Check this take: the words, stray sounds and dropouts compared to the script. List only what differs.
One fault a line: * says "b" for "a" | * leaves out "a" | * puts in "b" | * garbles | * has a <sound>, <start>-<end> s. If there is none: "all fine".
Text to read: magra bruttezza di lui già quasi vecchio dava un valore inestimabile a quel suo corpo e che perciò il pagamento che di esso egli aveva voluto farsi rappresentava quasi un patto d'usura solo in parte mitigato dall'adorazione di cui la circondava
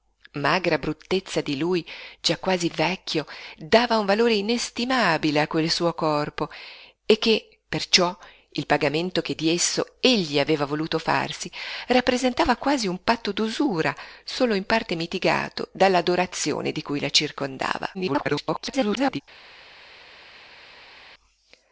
* garbles